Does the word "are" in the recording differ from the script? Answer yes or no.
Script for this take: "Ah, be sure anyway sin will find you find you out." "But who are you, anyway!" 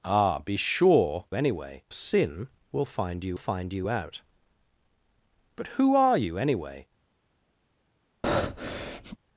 no